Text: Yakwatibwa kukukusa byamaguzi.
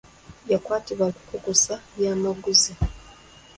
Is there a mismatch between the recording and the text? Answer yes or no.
no